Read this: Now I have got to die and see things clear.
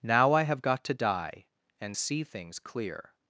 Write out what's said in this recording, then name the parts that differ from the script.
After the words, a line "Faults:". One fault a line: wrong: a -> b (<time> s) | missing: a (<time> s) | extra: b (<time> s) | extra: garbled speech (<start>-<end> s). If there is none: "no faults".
Now I have got to die and see things clear.
Faults:
no faults